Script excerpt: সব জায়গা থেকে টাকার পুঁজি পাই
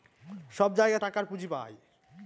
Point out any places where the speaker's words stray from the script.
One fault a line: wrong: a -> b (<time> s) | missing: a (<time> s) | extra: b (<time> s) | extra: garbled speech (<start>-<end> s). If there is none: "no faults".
missing: থেকে (1.0 s)